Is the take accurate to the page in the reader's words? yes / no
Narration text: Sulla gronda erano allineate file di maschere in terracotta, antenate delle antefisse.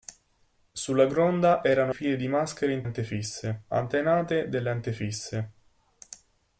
no